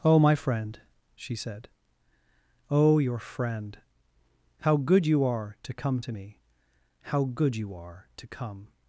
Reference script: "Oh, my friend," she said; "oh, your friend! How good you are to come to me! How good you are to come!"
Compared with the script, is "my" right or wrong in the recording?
right